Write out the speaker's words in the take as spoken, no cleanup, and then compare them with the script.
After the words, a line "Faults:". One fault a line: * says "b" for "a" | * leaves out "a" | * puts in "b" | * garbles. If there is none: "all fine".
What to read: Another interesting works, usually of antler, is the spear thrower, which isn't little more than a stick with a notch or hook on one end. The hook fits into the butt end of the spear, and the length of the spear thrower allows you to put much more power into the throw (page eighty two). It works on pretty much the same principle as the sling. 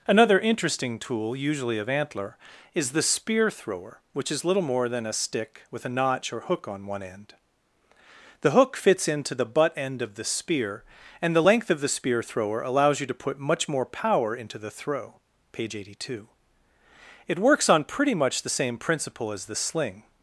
Another interesting tool, usually of antler, is the spear thrower, which is little more than a stick with a notch or hook on one end. The hook fits into the butt end of the spear, and the length of the spear thrower allows you to put much more power into the throw (page eighty two). It works on pretty much the same principle as the sling.
Faults:
* says "tool" for "works"
* says "is" for "isn't"